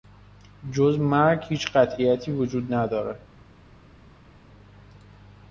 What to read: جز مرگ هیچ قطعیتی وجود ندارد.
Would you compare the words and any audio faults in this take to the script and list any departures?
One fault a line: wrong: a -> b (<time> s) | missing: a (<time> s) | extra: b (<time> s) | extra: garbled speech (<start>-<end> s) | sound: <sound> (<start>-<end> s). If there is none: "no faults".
no faults